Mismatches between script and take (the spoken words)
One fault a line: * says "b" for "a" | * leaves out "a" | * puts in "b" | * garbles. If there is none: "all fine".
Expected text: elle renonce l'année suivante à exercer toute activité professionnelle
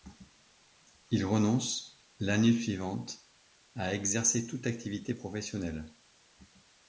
* says "il" for "elle"